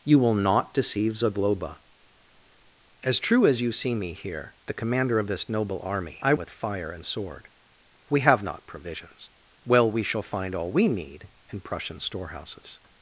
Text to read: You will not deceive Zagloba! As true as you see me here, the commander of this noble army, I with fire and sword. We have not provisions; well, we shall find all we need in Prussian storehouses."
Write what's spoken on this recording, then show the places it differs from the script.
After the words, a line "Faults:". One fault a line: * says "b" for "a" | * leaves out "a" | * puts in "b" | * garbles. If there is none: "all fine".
You will not deceive Zagloba! As true as you see me here, the commander of this noble army, I with fire and sword. We have not provisions; well, we shall find all we need in Prussian storehouses."
Faults:
all fine